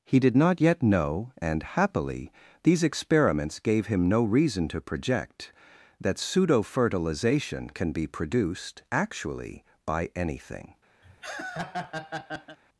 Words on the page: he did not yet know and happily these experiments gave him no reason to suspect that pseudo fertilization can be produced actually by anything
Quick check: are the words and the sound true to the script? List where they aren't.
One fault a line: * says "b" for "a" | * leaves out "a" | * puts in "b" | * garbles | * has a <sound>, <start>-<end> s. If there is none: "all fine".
* says "project" for "suspect"
* has a laugh, 11.0-12.6 s